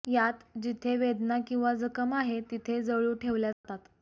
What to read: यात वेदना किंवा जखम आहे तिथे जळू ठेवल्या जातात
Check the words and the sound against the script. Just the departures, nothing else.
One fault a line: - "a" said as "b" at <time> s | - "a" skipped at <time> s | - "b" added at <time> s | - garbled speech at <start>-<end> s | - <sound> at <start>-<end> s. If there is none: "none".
- "जिथे" added at 0.6 s
- dropout at 3.5-3.6 s